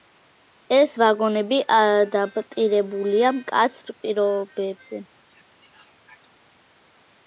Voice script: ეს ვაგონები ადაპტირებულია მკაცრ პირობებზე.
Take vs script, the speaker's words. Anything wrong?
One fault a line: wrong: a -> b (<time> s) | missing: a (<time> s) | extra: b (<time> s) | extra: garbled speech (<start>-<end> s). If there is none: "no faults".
no faults